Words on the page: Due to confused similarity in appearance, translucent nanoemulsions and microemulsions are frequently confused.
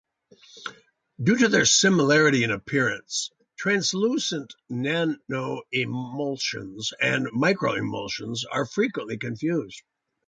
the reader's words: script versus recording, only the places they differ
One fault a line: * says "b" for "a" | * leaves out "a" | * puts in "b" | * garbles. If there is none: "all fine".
* says "their" for "confused"